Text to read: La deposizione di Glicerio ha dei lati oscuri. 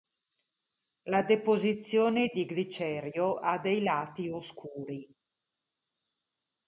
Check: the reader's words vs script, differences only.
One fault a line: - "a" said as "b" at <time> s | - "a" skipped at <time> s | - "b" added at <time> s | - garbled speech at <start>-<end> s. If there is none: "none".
none